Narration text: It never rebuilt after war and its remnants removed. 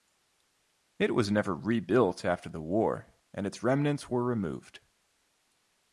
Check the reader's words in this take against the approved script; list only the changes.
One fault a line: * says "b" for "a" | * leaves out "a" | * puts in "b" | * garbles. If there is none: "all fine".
* puts in "was"
* puts in "the"
* puts in "were"